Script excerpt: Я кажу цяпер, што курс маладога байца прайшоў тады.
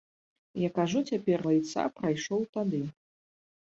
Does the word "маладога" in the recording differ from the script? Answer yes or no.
yes